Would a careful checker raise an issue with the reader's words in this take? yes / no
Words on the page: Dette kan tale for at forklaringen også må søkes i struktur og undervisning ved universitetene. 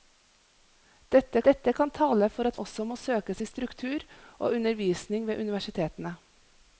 yes